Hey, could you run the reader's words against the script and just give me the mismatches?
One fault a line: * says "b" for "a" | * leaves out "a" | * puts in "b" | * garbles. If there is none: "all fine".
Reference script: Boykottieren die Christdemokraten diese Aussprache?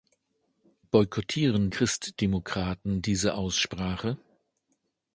* leaves out "die"